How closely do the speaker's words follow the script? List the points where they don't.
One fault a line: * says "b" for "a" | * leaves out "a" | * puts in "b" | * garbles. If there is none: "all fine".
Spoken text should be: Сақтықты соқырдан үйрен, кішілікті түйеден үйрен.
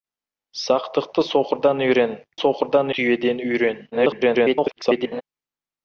* says "соқырдан" for "кішілікті"
* garbles